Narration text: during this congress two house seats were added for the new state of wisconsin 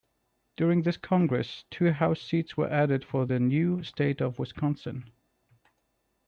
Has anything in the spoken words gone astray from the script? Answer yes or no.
no